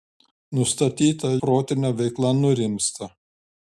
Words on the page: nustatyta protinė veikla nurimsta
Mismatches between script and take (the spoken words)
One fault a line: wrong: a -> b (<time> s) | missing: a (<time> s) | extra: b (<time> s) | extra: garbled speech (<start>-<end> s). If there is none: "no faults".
no faults